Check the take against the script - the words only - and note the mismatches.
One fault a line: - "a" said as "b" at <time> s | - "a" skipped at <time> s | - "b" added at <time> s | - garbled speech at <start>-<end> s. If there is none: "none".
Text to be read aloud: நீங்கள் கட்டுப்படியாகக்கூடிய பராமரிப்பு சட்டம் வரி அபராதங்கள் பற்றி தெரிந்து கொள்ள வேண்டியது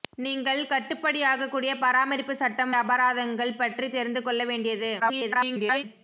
- "வரி" skipped at 2.7 s
- garbled speech at 5.0-5.8 s